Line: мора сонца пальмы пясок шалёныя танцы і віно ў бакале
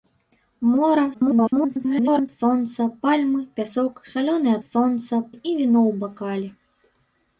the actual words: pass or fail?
fail